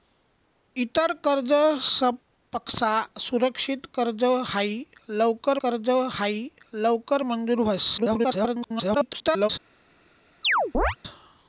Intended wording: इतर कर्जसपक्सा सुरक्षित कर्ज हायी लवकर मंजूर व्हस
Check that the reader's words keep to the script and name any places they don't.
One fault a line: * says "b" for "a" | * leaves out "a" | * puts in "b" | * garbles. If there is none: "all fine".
* puts in "कर्ज हायी लवकर"
* garbles